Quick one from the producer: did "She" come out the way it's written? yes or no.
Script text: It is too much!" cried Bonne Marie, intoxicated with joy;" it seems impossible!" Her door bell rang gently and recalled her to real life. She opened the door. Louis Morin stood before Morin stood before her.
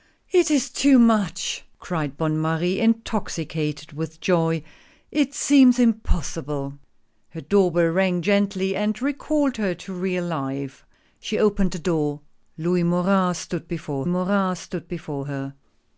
yes